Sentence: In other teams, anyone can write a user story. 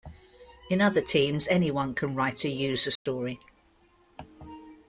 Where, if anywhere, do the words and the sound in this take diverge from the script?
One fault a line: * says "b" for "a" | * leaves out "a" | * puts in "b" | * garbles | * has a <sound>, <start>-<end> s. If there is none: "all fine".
* has a dropout, 3.0-3.1 s